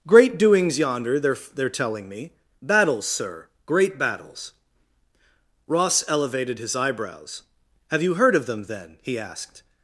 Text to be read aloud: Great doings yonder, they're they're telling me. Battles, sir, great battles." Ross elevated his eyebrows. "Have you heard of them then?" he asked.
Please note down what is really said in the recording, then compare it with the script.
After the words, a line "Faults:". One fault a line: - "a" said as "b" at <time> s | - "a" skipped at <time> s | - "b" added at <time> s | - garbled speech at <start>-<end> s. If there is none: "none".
Great doings yonder, they're they're telling me. Battles, sir, great battles." Ross elevated his eyebrows. "Have you heard of them then?" he asked.
Faults:
none